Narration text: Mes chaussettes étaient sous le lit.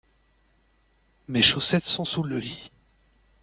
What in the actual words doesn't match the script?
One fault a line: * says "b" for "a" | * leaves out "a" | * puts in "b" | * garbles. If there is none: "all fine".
* says "sont" for "étaient"